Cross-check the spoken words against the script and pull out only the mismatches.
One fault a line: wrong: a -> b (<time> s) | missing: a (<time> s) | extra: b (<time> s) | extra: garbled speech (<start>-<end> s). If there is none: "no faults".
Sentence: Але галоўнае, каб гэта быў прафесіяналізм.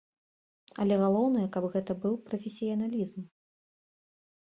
no faults